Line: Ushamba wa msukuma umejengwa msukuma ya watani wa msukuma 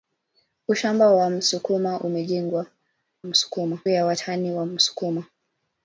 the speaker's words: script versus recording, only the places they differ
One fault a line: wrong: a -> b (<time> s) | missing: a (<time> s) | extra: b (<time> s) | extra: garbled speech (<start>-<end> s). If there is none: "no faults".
no faults